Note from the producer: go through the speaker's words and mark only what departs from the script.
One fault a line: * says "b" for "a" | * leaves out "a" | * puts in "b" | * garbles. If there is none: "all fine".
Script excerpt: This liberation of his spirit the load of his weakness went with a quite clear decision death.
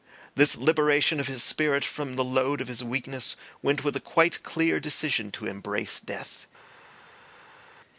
* puts in "from"
* puts in "to embrace"